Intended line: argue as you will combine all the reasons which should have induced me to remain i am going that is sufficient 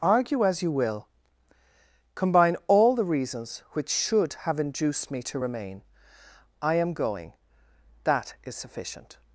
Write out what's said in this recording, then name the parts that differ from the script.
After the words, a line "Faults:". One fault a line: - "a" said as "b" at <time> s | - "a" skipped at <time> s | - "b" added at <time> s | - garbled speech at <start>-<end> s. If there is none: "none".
argue as you will combine all the reasons which should have induced me to remain i am going that is sufficient
Faults:
none